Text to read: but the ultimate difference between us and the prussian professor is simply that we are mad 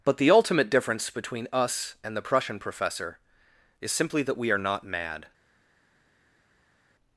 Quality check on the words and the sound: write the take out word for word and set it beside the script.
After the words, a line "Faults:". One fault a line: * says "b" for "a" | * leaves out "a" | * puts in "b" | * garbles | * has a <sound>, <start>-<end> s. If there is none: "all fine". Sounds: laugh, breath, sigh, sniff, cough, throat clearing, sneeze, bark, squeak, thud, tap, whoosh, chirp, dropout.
but the ultimate difference between us and the prussian professor is simply that we are not mad
Faults:
* puts in "not"